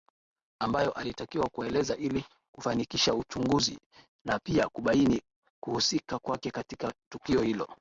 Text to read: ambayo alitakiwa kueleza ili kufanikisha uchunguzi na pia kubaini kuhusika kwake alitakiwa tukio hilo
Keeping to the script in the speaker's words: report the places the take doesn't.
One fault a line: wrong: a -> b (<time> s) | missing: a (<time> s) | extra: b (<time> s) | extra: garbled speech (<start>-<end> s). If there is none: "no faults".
wrong: alitakiwa -> katika (6.5 s)